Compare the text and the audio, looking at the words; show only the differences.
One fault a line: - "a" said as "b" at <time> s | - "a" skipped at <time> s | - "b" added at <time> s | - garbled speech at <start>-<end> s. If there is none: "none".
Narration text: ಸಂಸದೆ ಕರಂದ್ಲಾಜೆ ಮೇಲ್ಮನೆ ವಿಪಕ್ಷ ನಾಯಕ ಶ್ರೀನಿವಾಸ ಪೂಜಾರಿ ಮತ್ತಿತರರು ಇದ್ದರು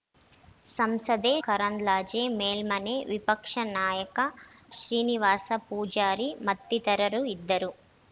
none